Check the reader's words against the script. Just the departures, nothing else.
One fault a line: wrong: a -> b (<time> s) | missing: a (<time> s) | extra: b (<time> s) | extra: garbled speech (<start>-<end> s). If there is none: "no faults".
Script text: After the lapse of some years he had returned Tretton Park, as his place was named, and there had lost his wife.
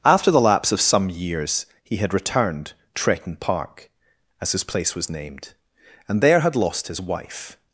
no faults